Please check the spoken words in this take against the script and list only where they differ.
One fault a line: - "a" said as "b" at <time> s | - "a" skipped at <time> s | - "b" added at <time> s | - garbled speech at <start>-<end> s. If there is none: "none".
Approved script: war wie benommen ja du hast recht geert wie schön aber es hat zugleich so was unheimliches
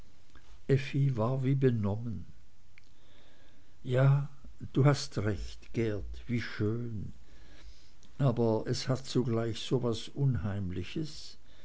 none